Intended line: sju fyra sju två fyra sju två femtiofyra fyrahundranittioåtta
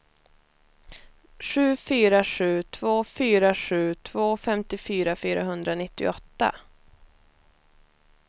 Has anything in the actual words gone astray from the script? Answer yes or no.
no